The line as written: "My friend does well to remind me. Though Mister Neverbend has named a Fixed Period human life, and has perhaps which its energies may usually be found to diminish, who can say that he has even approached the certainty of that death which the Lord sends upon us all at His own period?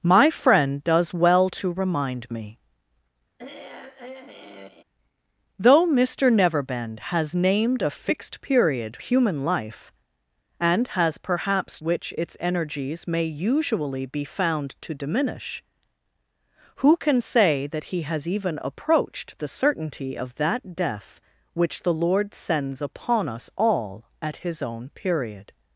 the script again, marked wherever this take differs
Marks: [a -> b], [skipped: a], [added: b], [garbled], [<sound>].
"My friend does well to remind me. [throat clearing] Though Mister Neverbend has named a Fixed Period human life, and has perhaps which its energies may usually be found to diminish, who can say that he has even approached the certainty of that death which the Lord sends upon us all at His own period?